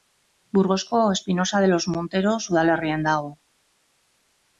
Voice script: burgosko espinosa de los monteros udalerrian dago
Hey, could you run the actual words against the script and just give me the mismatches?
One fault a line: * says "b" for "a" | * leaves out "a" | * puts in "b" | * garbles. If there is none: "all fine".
all fine